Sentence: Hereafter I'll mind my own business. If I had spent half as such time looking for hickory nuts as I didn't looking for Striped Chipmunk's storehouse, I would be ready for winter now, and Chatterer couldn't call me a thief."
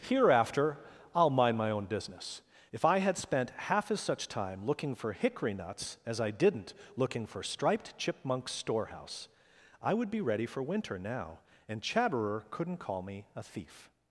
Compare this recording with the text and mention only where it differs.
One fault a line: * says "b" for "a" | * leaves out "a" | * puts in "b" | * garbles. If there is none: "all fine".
all fine